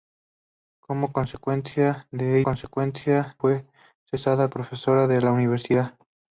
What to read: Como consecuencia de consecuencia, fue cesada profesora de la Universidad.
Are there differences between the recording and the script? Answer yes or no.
no